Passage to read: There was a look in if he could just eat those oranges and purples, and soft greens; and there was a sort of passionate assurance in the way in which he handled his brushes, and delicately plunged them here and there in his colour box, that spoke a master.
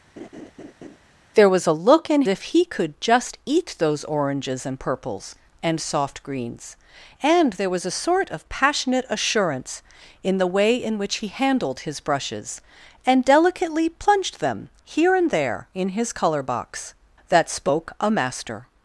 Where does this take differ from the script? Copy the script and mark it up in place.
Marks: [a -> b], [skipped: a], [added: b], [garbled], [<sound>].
[laugh] There was a look in if he could just eat those oranges and purples, and soft greens; and there was a sort of passionate assurance in the way in which he handled his brushes, and delicately plunged them here and there in his colour box, that spoke a master.